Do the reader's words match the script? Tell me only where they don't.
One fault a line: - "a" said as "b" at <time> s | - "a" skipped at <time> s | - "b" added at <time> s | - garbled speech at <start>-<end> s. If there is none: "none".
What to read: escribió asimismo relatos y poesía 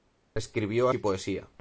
- "asimismo relatos" skipped at 0.9 s